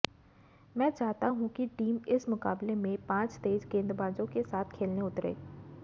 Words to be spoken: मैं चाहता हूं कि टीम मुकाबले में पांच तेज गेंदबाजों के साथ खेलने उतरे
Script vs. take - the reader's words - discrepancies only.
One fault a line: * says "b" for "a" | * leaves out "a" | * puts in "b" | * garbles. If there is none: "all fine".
* puts in "इस"